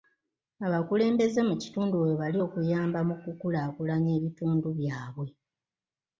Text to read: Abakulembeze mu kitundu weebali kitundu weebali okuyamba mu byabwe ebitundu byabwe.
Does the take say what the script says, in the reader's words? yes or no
no